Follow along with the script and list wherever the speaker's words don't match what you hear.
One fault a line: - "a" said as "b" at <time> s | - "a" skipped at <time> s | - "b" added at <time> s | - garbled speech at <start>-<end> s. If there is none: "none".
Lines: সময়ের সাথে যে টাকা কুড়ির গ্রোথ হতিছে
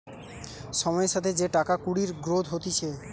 none